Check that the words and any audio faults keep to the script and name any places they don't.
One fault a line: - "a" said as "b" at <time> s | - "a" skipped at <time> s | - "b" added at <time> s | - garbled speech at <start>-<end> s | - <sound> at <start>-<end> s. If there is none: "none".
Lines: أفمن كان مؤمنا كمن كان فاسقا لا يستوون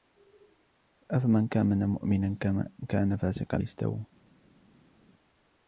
- "لا" skipped at 3.6 s